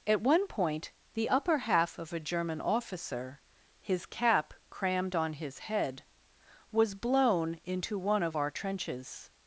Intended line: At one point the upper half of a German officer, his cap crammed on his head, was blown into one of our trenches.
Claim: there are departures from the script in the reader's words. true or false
false